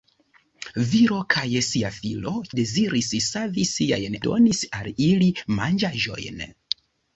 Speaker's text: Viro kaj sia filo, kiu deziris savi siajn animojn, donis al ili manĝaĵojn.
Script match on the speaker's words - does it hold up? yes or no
no